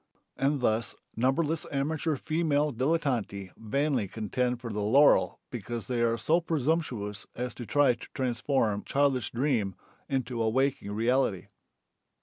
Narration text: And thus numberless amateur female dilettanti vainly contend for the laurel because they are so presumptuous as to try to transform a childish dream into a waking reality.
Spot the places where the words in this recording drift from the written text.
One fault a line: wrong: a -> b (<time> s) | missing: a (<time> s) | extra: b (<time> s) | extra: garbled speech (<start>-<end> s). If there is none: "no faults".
missing: a (8.8 s)